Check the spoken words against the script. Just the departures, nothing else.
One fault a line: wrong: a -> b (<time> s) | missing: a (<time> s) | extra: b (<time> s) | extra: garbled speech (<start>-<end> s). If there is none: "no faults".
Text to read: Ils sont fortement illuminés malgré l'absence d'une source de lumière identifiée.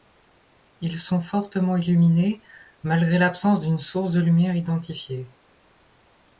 no faults